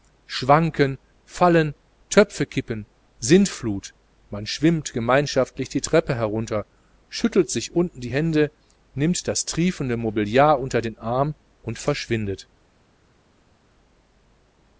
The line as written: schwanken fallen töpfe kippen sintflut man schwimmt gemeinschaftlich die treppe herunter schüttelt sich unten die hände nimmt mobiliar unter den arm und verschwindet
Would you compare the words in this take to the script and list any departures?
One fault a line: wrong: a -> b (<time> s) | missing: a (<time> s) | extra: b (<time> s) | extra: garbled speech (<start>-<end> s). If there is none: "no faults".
extra: das triefende (9.3 s)